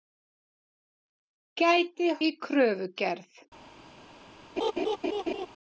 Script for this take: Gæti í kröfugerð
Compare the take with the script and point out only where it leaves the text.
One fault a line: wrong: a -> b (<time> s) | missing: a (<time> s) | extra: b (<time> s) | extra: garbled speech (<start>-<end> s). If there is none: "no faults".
no faults